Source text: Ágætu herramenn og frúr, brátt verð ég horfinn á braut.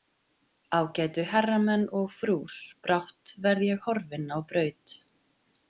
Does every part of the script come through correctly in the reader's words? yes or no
yes